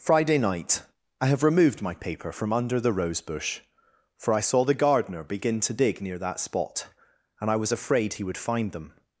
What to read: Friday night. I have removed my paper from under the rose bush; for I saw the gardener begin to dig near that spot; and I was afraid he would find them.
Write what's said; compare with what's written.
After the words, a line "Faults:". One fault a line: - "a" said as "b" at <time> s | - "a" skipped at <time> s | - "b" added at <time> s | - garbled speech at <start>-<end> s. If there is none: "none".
Friday night. I have removed my paper from under the rose bush; for I saw the gardener begin to dig near that spot; and I was afraid he would find them.
Faults:
none